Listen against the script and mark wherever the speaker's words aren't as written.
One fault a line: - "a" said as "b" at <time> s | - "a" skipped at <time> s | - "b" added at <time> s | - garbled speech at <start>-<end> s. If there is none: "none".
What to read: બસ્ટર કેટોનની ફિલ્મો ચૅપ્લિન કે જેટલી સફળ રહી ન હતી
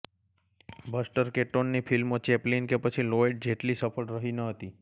- "પછી લોયડ" added at 2.8 s